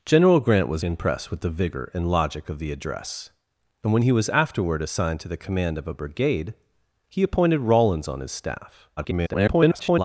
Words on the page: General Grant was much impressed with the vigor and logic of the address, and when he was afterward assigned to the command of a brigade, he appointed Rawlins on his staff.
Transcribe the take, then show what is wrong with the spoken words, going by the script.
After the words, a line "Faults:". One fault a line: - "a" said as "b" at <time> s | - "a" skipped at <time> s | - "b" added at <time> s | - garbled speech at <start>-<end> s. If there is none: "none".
General Grant was impressed with the vigor and logic of the address, and when he was afterward assigned to the command of a brigade, he appointed Rawlins on his staff. [garbled]
Faults:
- "much" skipped at 0.8 s
- garbled speech at 9.0-10.0 s